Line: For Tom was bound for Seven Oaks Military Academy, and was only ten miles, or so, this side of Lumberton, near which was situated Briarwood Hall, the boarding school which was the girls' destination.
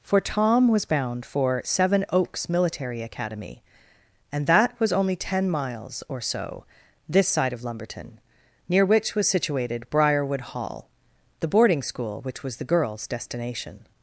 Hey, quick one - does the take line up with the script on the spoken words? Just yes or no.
no